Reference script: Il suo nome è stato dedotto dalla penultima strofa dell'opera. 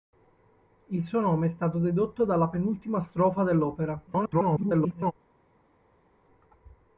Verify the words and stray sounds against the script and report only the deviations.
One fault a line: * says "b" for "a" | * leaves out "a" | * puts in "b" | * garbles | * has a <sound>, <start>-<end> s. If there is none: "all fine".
* garbles